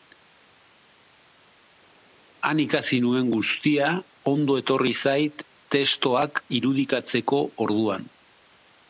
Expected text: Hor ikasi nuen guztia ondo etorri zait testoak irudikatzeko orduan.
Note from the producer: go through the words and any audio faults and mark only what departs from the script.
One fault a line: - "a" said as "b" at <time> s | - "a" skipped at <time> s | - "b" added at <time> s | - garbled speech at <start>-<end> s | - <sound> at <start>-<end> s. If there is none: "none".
- "Hor" said as "Han" at 2.5 s